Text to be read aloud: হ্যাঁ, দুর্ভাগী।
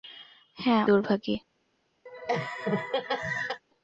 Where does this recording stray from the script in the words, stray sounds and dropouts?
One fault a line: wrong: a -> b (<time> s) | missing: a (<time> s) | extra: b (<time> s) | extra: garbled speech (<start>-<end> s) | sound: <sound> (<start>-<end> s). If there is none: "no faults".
sound: laugh (2.1-3.6 s)